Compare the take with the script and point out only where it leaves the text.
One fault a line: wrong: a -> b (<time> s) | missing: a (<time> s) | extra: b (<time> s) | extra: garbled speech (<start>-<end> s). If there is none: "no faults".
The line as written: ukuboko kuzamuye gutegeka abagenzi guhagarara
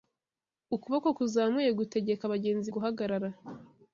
no faults